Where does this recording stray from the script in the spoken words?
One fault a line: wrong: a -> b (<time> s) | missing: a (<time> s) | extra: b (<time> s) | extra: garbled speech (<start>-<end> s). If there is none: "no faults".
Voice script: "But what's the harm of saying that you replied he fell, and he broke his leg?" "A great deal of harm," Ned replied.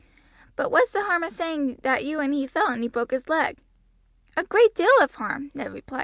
wrong: replied -> and (2.2 s)